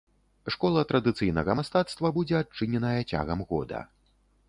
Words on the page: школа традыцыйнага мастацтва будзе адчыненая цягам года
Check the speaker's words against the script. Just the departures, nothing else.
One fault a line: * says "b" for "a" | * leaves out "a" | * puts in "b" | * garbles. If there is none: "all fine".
all fine